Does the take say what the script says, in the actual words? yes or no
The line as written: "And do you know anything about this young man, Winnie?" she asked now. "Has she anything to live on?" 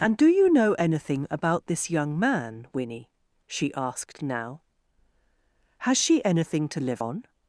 yes